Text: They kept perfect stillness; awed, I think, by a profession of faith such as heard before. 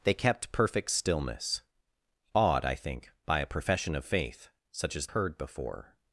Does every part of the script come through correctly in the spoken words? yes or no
yes